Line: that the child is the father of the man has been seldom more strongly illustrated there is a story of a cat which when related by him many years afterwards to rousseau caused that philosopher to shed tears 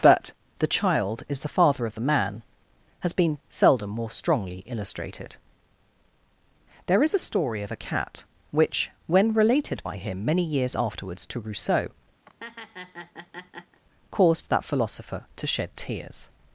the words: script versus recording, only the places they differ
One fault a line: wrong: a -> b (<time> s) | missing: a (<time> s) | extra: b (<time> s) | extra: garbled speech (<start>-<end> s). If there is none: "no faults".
wrong: that -> but (0.0 s)